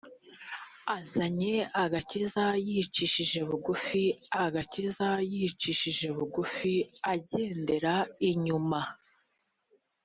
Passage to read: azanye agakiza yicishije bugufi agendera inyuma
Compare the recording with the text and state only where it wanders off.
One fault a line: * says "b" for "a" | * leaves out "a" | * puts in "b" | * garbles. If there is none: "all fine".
* puts in "agakiza yicishije bugufi"